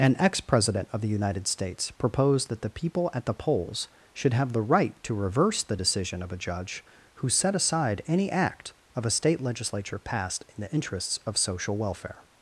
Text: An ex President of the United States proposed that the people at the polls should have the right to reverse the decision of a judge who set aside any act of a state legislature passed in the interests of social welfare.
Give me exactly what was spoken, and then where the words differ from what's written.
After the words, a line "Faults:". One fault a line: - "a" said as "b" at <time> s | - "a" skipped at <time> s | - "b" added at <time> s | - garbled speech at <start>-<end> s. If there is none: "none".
An ex President of the United States proposed that the people at the polls should have the right to reverse the decision of a judge who set aside any act of a state legislature passed in the interests of social welfare.
Faults:
none